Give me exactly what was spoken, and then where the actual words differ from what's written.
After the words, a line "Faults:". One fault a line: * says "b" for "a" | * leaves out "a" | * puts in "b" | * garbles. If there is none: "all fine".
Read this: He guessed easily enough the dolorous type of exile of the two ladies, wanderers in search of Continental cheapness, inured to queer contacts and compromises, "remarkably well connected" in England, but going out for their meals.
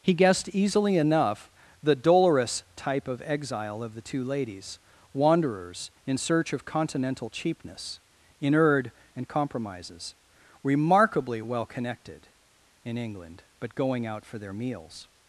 He guessed easily enough the dolorous type of exile of the two ladies, wanderers in search of Continental cheapness, inured and compromises, "remarkably well connected" in England, but going out for their meals.
Faults:
* leaves out "to queer contacts"